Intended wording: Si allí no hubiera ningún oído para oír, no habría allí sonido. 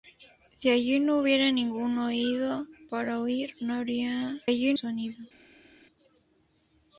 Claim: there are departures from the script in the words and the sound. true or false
false